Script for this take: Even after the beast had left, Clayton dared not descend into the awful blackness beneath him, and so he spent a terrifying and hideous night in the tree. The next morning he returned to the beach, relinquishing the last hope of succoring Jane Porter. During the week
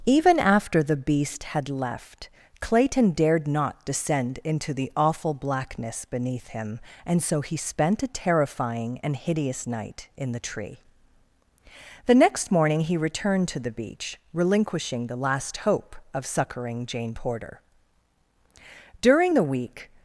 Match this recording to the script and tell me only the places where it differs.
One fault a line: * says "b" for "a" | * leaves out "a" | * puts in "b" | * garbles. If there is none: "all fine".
all fine